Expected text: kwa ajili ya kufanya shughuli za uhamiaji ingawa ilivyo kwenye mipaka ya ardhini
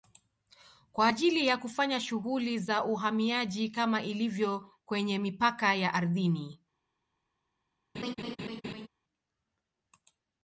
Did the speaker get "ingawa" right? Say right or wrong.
wrong